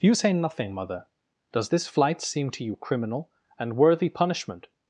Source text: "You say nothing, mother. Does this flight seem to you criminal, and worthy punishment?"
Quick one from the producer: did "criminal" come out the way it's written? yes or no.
yes